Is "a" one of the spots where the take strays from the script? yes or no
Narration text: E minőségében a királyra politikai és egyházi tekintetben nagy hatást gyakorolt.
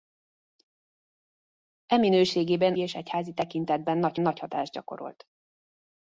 yes